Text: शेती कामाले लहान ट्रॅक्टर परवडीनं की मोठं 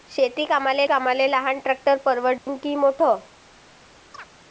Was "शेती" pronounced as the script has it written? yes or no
yes